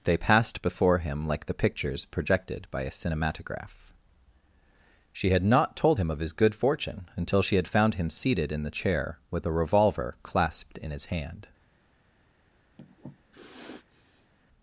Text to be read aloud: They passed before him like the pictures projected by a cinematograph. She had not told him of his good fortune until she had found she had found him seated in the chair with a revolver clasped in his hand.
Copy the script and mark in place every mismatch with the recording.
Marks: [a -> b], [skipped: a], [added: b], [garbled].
They passed before him like the pictures projected by a cinematograph. She had not told him of his good fortune until she had found [skipped: she had found] him seated in the chair with a revolver clasped in his hand.